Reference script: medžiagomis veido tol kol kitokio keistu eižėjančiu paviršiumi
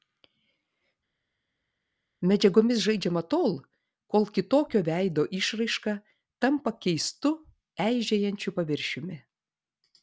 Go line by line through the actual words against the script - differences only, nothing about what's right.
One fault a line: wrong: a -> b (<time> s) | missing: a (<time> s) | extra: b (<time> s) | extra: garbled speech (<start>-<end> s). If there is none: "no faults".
wrong: veido -> žaidžiama (2.9 s)
extra: veido išraiška tampa (4.9 s)